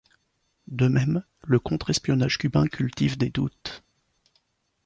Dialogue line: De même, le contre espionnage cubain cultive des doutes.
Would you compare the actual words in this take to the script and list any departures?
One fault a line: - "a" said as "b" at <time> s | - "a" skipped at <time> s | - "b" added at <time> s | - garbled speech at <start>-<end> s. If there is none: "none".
none